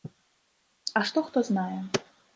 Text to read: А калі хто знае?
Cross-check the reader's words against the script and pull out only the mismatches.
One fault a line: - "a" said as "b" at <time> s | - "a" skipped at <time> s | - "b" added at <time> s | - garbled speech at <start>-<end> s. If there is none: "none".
- "калі" said as "што" at 1.1 s